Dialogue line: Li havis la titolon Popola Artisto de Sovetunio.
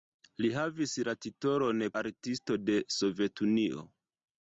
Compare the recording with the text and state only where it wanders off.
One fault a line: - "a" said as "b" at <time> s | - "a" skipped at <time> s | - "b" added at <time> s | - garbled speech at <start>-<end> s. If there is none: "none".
- "Popola" skipped at 1.9 s